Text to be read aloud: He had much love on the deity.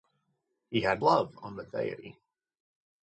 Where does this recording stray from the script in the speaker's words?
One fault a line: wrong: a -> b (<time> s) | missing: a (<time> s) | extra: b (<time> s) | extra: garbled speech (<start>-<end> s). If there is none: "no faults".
missing: much (1.0 s)